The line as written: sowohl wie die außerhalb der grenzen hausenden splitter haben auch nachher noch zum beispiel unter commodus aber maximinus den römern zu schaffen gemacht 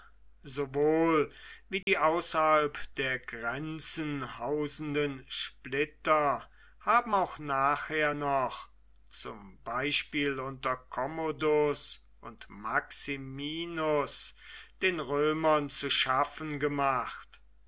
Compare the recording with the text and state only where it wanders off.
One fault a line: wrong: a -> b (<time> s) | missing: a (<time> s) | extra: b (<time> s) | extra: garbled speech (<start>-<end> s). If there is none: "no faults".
wrong: aber -> und (12.2 s)